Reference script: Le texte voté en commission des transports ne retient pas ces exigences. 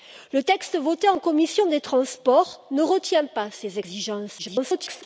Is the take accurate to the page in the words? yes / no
no